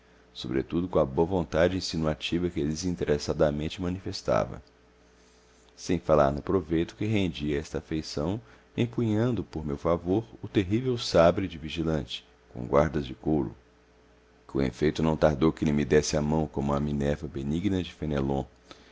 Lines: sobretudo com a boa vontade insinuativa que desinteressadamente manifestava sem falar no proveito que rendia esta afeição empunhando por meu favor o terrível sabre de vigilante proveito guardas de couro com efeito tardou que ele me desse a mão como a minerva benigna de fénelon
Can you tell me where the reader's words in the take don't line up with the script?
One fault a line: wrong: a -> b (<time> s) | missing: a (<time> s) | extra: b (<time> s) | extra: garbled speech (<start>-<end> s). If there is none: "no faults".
wrong: proveito -> com (12.5 s)
extra: não (15.0 s)